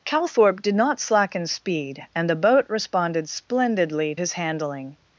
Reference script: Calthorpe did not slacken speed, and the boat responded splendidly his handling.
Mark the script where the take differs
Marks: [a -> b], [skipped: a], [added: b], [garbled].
Calthorpe did not slacken speed, and the boat responded splendidly his handling.